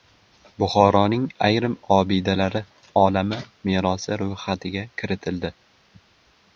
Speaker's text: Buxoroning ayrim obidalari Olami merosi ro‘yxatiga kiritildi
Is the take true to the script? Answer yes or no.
yes